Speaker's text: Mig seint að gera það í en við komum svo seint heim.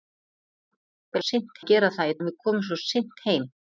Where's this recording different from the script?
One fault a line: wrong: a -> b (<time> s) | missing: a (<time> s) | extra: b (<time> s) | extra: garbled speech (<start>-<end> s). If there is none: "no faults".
no faults